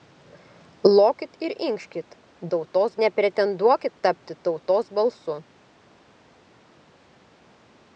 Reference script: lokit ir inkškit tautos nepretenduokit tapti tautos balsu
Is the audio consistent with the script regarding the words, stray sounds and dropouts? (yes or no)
yes